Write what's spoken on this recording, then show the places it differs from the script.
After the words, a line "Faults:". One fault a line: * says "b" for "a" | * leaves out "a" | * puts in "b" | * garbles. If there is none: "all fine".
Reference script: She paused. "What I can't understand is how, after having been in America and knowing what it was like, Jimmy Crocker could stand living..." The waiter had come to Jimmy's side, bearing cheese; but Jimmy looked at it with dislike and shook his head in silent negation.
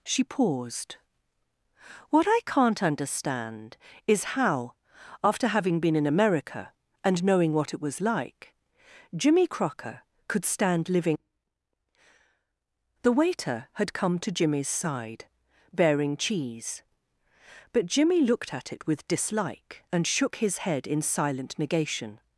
She paused. "What I can't understand is how, after having been in America and knowing what it was like, Jimmy Crocker could stand living..." The waiter had come to Jimmy's side, bearing cheese; but Jimmy looked at it with dislike and shook his head in silent negation.
Faults:
all fine